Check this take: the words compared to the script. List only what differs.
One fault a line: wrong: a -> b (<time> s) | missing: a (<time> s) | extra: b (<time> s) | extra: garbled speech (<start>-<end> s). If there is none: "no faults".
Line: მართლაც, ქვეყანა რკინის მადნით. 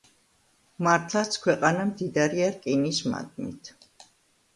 extra: მდიდარია (1.9 s)